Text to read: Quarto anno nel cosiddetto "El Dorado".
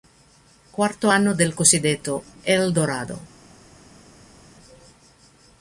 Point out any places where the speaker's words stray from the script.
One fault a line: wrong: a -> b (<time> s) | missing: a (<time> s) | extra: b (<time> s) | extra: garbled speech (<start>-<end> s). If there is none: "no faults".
wrong: nel -> del (1.3 s)